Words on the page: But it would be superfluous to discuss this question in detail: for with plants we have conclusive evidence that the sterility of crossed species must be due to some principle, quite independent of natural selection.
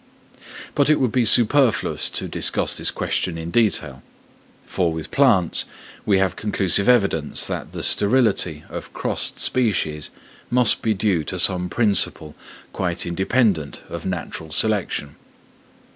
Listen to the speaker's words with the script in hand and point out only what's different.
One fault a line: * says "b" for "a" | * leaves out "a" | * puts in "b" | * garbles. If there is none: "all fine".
all fine